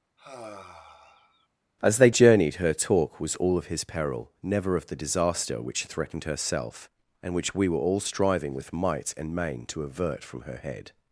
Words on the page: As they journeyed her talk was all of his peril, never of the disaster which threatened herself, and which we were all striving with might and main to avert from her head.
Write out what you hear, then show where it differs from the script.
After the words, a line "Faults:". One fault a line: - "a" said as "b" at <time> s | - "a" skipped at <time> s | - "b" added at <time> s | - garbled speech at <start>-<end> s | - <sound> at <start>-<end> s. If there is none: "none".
As they journeyed her talk was all of his peril, never of the disaster which threatened herself, and which we were all striving with might and main to avert from her head.
Faults:
- sigh at 0.2-1.5 s